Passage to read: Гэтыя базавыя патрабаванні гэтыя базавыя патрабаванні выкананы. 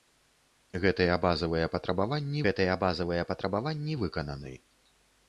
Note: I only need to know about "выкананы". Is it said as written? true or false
true